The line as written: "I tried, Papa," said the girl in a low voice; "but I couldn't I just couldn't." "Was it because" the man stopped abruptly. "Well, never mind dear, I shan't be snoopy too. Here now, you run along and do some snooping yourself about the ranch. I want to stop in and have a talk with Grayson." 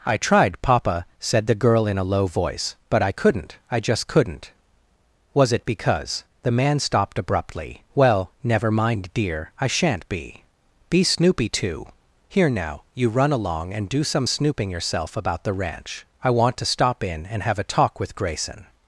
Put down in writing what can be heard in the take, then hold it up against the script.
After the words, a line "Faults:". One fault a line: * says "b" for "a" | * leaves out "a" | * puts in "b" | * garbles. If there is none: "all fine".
"I tried, Papa," said the girl in a low voice; "but I couldn't I just couldn't." "Was it because" the man stopped abruptly. "Well, never mind dear, I shan't be be snoopy too. Here now, you run along and do some snooping yourself about the ranch. I want to stop in and have a talk with Grayson."
Faults:
* puts in "be"